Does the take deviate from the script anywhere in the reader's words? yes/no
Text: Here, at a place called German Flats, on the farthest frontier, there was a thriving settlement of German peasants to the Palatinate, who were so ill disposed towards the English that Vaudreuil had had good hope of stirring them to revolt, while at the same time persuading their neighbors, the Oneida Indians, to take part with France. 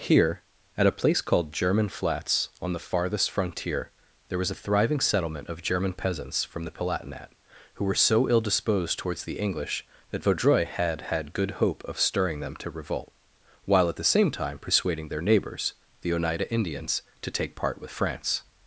yes